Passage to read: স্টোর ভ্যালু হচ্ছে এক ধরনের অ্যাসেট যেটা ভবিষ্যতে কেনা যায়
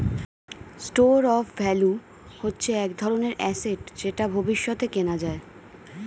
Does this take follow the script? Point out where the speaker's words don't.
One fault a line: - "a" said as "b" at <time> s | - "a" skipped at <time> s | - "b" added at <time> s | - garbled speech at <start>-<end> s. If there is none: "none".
- "অফ" added at 1.3 s